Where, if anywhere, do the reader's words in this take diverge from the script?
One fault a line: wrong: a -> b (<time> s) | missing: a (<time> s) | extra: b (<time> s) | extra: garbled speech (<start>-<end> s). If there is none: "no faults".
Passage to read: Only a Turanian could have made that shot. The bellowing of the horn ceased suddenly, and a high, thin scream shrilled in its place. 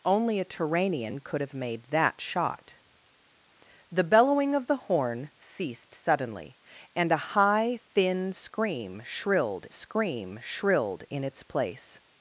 extra: scream shrilled (9.7 s)